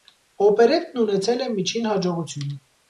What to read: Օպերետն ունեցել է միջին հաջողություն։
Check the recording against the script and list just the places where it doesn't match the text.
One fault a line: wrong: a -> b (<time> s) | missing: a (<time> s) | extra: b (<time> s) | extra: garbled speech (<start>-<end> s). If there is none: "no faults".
no faults